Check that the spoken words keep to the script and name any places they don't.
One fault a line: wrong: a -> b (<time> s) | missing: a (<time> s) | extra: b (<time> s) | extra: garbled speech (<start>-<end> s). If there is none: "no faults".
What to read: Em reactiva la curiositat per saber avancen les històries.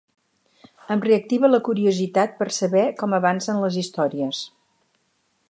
extra: com (3.0 s)